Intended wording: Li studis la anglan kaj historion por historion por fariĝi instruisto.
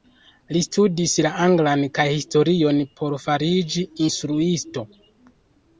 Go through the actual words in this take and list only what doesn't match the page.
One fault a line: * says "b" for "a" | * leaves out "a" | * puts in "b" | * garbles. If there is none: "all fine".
* leaves out "historion por"